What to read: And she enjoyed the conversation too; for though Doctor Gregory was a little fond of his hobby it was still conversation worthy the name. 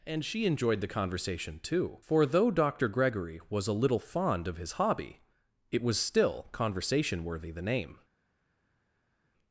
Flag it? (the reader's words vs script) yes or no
no